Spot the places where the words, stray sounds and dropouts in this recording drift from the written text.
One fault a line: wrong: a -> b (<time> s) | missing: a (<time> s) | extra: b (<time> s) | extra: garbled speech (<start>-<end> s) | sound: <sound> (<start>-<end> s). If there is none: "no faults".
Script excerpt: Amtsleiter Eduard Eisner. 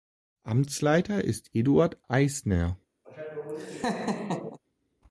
extra: ist (1.2 s)
sound: laugh (3.0-4.6 s)